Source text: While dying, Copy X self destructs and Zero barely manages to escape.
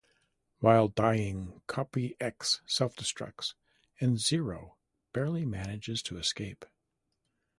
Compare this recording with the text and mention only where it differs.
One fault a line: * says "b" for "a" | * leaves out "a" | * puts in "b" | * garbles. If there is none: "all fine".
all fine